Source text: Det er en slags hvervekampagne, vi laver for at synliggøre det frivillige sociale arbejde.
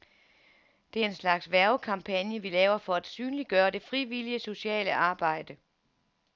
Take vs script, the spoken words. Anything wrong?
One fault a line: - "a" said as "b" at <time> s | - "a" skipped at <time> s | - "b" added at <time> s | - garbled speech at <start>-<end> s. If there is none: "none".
none